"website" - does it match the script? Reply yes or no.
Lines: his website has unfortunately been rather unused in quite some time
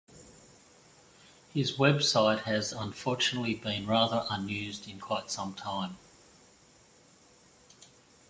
yes